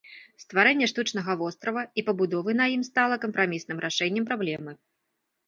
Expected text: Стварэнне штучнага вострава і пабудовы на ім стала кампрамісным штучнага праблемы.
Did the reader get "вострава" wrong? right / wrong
right